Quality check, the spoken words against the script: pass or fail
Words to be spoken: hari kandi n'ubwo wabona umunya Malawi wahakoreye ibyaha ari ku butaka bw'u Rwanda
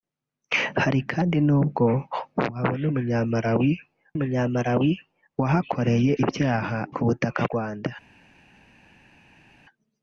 fail